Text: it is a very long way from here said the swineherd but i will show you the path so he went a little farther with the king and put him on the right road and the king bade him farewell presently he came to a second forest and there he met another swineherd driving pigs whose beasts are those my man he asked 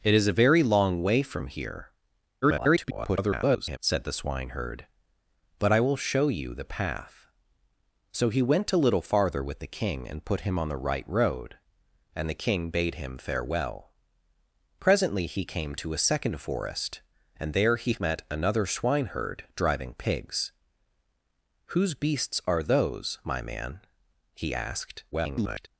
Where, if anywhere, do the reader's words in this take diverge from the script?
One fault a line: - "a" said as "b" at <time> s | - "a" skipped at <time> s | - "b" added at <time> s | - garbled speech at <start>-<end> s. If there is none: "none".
- garbled speech at 2.4-3.8 s
- garbled speech at 25.1-25.7 s